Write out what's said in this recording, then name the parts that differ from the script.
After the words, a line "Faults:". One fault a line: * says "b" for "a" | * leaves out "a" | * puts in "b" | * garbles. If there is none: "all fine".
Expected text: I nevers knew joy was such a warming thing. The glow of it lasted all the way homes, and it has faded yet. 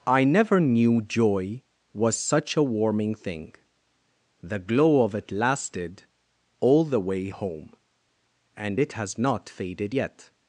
I never knew joy was such a warming thing. The glow of it lasted all the way home, and it has not faded yet.
Faults:
* says "never" for "nevers"
* says "home" for "homes"
* puts in "not"